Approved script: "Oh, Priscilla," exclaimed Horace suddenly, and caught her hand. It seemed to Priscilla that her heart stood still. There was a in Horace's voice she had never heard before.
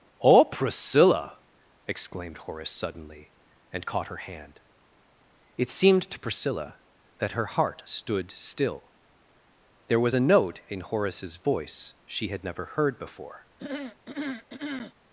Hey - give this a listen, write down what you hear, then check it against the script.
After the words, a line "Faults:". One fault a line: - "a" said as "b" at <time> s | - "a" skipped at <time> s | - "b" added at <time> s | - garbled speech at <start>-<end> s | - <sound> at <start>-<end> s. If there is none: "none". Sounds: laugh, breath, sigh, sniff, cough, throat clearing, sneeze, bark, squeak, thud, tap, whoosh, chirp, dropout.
"Oh, Priscilla," exclaimed Horace suddenly, and caught her hand. It seemed to Priscilla that her heart stood still. There was a note in Horace's voice she had never heard before.
Faults:
- "note" added at 10.2 s
- throat clearing at 13.6-14.9 s